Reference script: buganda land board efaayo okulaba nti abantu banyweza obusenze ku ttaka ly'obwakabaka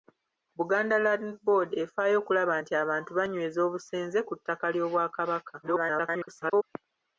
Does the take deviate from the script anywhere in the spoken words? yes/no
yes